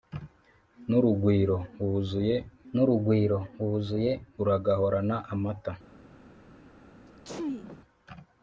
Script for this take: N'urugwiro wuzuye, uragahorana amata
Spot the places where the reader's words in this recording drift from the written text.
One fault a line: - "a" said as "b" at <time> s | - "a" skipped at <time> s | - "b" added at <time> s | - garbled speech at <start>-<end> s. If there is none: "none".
- "n'urugwiro wuzuye" added at 2.7 s